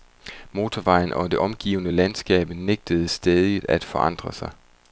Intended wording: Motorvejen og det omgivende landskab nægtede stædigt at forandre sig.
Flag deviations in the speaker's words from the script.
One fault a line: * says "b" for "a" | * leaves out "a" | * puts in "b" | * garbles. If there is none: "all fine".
all fine